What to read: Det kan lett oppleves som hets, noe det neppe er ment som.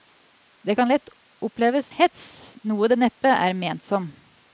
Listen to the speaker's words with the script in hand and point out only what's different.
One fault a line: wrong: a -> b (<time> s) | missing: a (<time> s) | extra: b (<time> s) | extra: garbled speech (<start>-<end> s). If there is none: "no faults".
missing: som (1.9 s)